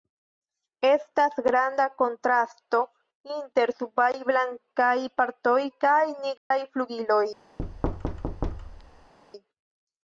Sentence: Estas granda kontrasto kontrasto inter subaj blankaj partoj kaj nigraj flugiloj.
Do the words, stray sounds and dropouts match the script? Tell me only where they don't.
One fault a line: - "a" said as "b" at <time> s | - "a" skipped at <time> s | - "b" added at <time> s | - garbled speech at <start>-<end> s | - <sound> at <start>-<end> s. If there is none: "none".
- "kontrasto" skipped at 2.8 s
- dropout at 6.4-6.5 s
- thud at 7.6-9.1 s